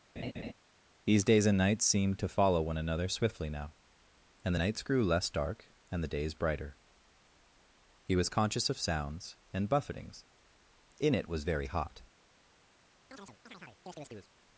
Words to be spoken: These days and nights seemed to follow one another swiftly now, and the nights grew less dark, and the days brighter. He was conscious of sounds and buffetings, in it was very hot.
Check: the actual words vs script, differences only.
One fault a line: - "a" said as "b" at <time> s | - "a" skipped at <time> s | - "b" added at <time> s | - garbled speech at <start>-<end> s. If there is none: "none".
none